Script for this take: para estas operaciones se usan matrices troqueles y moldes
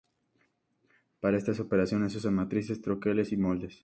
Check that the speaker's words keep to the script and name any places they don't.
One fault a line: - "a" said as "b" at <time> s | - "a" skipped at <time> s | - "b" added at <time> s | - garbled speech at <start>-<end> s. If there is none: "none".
none